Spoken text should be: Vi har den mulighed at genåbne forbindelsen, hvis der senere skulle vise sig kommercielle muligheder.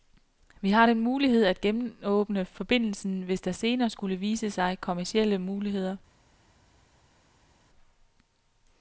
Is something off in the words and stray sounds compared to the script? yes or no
no